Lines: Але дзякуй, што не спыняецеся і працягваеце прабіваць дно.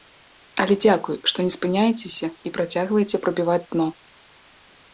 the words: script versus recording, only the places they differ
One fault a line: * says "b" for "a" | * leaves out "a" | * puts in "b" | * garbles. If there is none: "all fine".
all fine